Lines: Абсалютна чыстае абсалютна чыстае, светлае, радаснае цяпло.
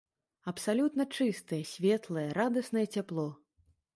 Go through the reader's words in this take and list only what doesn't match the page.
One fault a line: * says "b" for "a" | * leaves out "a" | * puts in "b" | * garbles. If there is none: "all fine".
* leaves out "абсалютна чыстае"